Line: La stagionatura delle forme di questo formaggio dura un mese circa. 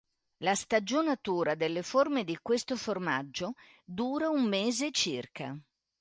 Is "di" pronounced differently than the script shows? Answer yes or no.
no